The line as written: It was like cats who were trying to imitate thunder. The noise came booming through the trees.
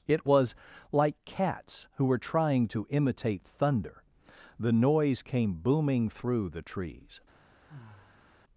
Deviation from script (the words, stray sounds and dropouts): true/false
true